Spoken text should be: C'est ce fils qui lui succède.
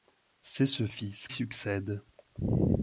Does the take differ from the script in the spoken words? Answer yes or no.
yes